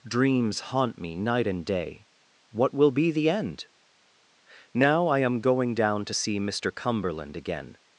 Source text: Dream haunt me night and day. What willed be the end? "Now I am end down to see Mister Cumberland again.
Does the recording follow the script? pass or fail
fail